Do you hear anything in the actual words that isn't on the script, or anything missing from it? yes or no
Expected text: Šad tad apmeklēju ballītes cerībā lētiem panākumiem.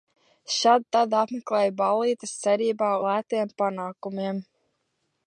no